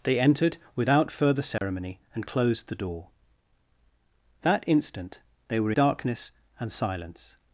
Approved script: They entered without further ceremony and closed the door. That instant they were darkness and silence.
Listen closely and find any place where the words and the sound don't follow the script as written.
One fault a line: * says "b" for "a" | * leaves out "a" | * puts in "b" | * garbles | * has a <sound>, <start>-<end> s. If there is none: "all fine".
* has a dropout, 1.6-1.6 s